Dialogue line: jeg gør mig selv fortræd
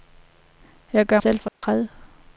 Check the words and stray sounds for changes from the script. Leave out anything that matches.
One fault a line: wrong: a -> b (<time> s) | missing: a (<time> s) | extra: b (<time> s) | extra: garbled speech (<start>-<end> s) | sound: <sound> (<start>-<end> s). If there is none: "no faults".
missing: mig (1.2 s)
sound: dropout (1.5-1.6 s)